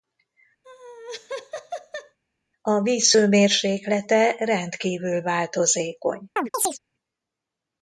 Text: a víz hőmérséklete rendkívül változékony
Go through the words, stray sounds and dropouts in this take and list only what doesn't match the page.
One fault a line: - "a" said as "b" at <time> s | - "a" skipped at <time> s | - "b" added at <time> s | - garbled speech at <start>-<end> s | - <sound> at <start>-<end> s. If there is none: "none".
- laugh at 0.6-2.2 s
- chirp at 6.4-6.8 s